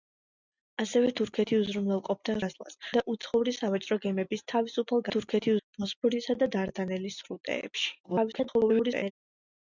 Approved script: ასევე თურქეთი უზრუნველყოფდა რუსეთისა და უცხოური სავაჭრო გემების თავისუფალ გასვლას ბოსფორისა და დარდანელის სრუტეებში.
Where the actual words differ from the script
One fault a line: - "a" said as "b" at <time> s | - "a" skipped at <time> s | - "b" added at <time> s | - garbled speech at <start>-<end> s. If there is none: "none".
- "რუსეთისა" said as "გასვლას" at 2.4 s
- "გასვლას" said as "თურქეთი" at 5.1 s
- garbled speech at 8.0-9.1 s